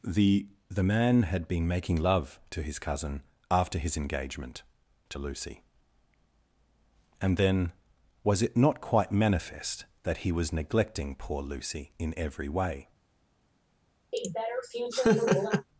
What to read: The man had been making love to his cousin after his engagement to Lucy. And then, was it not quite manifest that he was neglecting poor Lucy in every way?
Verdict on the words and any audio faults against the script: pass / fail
fail